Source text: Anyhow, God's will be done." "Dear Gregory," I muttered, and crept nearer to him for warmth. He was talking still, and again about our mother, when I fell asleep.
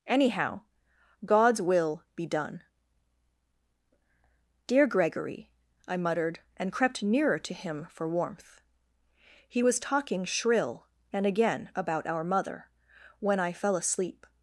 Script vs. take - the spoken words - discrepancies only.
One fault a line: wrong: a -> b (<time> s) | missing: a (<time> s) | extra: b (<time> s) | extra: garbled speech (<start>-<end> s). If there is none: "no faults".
wrong: still -> shrill (10.2 s)